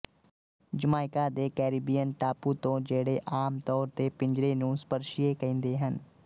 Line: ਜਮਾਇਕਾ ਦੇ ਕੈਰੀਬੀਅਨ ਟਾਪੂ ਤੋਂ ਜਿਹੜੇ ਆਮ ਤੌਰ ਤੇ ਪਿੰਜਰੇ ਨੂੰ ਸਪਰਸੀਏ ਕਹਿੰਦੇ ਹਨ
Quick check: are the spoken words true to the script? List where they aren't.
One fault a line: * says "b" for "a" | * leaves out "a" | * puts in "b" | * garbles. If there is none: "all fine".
all fine